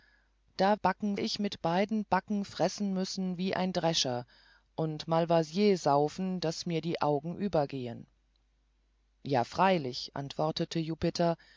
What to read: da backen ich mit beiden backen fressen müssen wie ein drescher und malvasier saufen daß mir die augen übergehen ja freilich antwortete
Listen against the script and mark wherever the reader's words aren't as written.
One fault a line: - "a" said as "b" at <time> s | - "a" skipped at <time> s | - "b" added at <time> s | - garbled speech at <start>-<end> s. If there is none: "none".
none